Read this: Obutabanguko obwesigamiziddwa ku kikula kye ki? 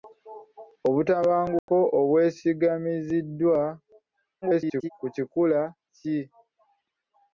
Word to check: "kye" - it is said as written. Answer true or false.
false